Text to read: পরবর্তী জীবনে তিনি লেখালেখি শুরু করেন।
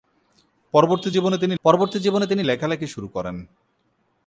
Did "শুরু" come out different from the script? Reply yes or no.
no